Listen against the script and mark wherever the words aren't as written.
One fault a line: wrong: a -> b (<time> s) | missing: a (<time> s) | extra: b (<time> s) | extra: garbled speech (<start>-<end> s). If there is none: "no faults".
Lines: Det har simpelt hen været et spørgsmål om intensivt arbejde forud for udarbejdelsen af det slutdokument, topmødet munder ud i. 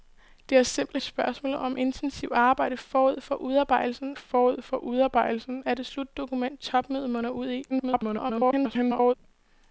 missing: hen været (1.0 s)
extra: forud for udarbejdelsen (4.1 s)
extra: garbled speech (7.7-9.1 s)